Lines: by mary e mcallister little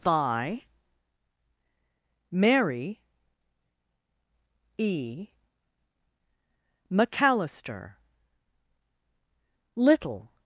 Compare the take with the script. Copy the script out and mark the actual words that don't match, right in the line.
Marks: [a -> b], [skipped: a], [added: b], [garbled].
by mary e mcallister little